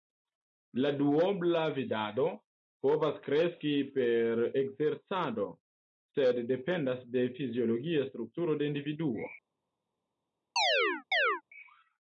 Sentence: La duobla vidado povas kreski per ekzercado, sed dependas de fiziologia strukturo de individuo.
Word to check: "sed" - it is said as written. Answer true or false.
true